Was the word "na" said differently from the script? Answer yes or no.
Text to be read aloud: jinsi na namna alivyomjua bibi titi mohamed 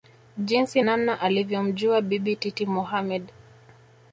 yes